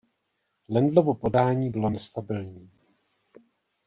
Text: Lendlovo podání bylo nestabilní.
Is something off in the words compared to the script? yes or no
no